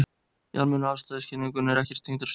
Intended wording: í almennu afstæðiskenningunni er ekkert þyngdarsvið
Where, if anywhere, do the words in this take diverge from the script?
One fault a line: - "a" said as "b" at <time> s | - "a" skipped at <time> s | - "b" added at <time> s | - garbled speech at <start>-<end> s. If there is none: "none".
none